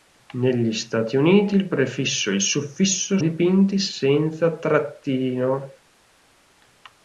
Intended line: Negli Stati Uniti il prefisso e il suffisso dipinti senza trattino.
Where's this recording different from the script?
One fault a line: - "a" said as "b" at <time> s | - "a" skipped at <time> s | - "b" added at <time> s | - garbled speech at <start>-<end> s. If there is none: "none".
none